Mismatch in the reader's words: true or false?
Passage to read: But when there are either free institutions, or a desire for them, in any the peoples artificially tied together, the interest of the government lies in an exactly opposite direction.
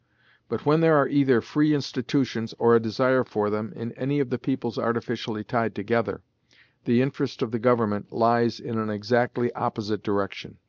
true